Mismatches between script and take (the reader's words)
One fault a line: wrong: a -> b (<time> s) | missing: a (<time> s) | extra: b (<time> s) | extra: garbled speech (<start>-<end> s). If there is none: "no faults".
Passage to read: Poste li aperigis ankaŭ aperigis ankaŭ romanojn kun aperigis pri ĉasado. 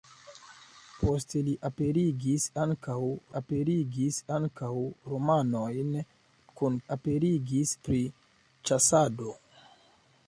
no faults